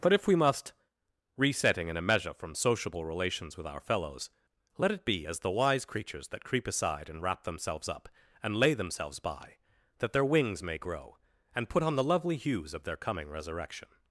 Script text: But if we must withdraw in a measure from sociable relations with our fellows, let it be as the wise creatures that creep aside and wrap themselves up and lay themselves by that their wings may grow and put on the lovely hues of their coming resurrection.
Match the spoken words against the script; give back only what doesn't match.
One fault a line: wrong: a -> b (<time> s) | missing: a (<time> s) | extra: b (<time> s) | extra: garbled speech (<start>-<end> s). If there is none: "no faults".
wrong: withdraw -> resetting (1.4 s)